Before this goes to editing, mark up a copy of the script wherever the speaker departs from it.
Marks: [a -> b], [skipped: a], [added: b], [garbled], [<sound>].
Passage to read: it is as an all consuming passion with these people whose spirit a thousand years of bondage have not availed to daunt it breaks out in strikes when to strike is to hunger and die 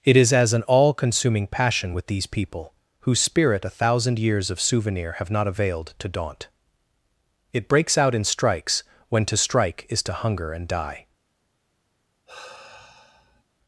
it is as an all consuming passion with these people whose spirit a thousand years of [bondage -> souvenir] have not availed to daunt it breaks out in strikes when to strike is to hunger and die [sigh]